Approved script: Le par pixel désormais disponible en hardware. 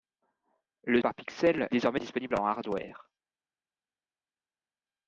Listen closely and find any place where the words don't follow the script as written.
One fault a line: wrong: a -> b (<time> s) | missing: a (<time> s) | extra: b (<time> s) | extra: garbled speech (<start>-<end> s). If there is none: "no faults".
no faults